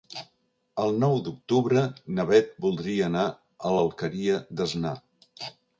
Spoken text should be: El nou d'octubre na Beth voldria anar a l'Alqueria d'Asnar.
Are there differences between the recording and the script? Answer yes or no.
no